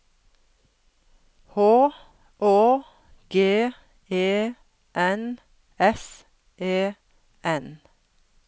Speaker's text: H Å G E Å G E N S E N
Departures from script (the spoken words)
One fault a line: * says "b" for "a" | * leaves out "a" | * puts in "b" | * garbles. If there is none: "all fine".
* leaves out "Å G E"